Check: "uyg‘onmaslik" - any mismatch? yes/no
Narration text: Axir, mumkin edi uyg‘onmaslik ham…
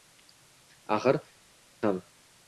yes